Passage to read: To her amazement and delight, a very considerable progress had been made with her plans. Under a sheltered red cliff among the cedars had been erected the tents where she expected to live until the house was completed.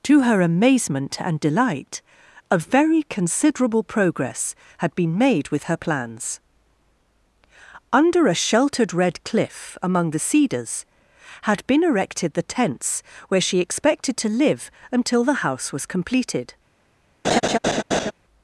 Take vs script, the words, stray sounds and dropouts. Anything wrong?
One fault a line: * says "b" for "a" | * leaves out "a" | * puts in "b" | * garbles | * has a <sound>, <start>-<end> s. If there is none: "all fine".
* has a laugh, 17.2-18.1 s